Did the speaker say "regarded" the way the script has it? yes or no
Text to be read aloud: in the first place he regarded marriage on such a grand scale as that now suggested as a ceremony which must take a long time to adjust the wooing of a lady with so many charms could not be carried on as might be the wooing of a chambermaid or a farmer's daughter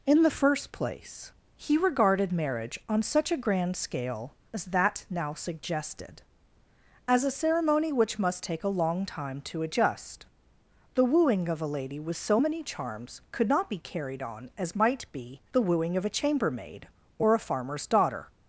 yes